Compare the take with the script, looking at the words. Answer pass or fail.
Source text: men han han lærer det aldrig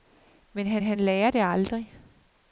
pass